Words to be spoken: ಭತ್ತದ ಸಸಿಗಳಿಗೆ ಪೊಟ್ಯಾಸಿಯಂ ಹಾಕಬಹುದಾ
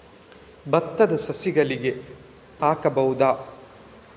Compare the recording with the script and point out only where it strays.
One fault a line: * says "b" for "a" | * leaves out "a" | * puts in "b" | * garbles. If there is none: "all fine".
* leaves out "ಪೊಟ್ಯಾಸಿಯಂ"